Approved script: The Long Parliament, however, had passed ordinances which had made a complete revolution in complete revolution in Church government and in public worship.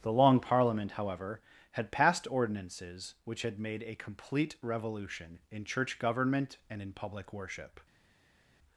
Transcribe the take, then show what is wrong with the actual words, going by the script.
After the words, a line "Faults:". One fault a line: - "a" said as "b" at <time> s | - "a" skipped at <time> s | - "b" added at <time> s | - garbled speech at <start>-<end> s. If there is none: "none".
The Long Parliament, however, had passed ordinances which had made a complete revolution in Church government and in public worship.
Faults:
- "complete revolution in" skipped at 5.6 s